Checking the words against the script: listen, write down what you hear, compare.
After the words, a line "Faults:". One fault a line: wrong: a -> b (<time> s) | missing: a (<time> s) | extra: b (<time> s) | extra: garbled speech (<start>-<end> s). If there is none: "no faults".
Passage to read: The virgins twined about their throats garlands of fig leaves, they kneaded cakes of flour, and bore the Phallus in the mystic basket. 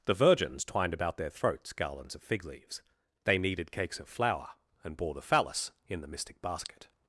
The virgins twined about their throats garlands of fig leaves, they kneaded cakes of flour, and bore the Phallus in the mystic basket.
Faults:
no faults